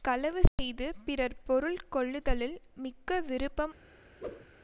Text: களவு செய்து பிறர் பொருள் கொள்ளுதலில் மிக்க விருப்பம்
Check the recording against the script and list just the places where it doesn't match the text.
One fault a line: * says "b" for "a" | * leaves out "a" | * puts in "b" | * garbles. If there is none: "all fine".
all fine